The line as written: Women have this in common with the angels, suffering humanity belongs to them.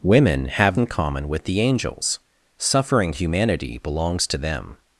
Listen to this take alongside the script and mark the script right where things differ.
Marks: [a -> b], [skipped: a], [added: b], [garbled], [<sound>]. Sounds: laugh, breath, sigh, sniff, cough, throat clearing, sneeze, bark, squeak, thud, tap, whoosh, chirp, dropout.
Women have [skipped: this] in common with the angels, suffering humanity belongs to them.